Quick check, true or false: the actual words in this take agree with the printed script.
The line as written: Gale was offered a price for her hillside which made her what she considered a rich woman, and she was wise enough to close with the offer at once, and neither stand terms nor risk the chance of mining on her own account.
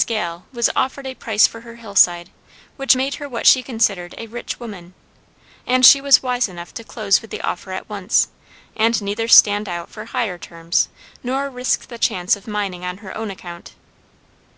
false